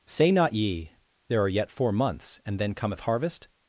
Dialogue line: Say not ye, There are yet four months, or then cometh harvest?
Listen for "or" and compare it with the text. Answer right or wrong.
wrong